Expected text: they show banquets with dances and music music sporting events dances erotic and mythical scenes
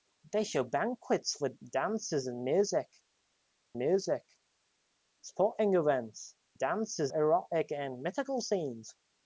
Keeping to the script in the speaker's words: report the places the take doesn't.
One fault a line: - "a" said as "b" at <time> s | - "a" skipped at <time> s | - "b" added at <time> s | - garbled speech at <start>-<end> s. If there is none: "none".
none